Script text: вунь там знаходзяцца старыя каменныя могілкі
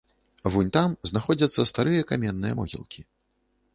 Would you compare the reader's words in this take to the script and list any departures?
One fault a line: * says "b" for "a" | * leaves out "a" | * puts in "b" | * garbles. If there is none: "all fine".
all fine